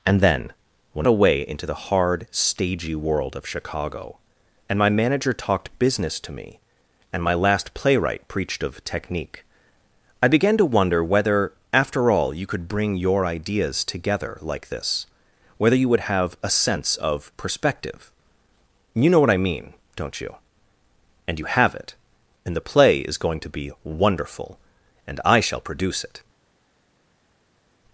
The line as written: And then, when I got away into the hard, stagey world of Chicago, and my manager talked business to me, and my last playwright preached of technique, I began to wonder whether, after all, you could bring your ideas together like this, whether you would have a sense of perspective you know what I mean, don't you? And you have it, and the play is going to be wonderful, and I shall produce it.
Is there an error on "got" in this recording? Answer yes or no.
yes